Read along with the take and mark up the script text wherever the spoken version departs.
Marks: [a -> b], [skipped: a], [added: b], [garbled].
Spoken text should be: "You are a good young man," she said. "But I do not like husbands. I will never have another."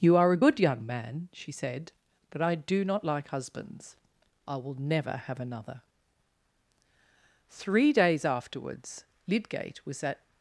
"You are a good young man," she said. "But I do not like husbands. I will never have another." [added: Three days afterwards Lydgate was at]